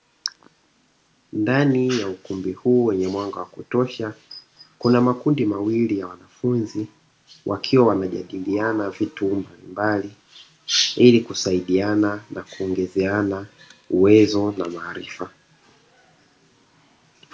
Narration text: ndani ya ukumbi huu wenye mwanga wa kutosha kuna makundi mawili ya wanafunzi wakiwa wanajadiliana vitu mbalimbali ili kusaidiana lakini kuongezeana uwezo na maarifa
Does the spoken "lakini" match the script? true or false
false